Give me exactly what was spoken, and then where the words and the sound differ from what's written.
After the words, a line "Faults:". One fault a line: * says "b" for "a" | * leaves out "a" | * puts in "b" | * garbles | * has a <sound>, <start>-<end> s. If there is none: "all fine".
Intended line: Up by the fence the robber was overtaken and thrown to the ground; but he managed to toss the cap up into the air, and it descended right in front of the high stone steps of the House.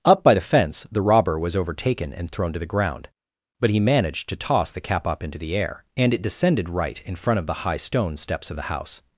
Up by the fence the robber was overtaken and thrown to the ground; but he managed to toss the cap up into the air, and it descended right in front of the high stone steps of the House.
Faults:
all fine